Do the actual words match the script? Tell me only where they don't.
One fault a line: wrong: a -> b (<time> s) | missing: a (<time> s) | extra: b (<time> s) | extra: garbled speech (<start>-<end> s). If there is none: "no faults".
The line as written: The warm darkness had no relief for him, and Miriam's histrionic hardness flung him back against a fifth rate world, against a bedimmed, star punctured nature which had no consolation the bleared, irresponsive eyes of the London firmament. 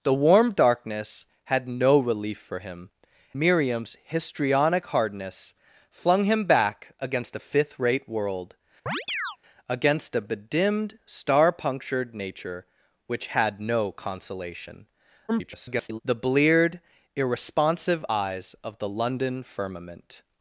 missing: and (2.9 s)
extra: garbled speech (15.3-16.0 s)